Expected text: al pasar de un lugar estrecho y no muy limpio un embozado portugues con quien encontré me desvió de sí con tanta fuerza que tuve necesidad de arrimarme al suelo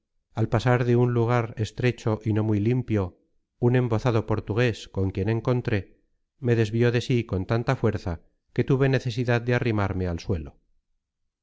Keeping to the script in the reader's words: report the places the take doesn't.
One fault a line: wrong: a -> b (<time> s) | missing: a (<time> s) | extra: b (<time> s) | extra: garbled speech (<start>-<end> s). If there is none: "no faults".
no faults